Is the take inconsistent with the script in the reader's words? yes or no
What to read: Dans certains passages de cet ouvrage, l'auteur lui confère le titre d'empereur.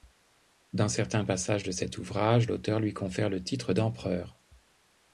no